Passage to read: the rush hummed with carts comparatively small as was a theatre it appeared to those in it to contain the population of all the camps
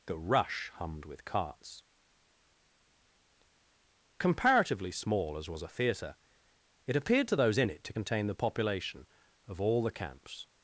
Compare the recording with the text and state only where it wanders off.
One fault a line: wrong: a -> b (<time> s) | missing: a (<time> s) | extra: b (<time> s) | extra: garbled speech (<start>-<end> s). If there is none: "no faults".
no faults